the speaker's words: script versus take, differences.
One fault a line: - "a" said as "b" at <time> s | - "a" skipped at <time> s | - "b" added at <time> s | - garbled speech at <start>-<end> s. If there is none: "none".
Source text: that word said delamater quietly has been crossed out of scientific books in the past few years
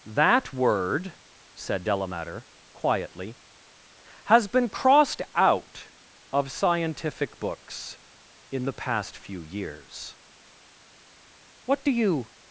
- "what do you" added at 11.7 s